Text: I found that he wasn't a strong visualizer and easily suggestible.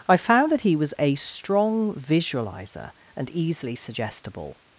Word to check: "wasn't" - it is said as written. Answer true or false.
false